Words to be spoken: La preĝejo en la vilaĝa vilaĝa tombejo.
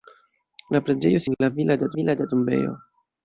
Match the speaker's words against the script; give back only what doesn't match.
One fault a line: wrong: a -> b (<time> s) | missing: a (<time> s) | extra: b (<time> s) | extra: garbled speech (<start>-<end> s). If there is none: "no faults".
no faults